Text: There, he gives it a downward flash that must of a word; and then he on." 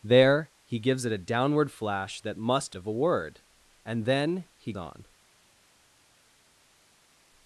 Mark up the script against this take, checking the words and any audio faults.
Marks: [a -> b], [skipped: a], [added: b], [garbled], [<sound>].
There, he gives it a downward flash that must of a word; and then he on."